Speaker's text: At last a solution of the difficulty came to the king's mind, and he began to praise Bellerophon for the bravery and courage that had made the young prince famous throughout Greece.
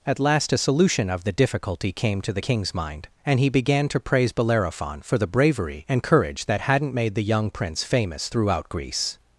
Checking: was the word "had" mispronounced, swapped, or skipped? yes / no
yes